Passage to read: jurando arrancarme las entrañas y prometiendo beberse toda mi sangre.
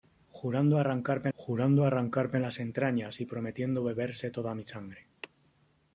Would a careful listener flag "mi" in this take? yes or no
no